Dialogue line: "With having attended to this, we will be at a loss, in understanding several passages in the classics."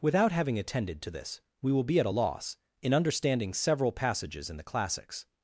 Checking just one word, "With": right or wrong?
wrong